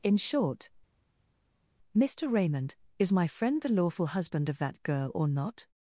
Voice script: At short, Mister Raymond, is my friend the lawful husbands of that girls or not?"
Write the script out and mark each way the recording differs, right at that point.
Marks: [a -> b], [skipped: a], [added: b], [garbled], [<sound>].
[At -> In] short, Mister Raymond, is my friend the lawful [husbands -> husband] of that [girls -> girl] or not?"